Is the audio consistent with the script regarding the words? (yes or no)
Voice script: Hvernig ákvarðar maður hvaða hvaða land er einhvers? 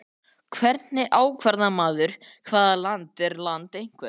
no